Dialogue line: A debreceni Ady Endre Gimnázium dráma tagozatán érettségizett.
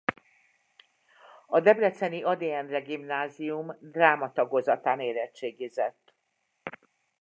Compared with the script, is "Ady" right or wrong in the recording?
right